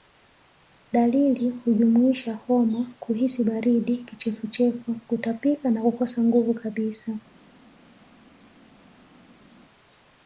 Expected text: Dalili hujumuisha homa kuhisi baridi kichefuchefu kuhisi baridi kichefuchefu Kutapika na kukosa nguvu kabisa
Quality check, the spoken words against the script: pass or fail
fail